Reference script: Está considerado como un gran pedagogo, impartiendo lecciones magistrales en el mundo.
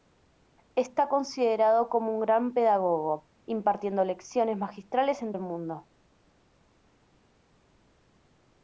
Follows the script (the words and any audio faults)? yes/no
yes